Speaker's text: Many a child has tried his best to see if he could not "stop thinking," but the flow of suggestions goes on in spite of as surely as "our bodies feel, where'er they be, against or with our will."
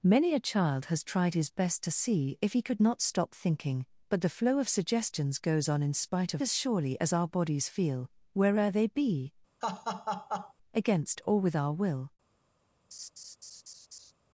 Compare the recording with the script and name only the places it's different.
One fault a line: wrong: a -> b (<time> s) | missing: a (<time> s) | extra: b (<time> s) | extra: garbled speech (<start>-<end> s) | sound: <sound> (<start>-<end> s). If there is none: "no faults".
sound: laugh (9.6-10.5 s)
sound: laugh (12.9-14.1 s)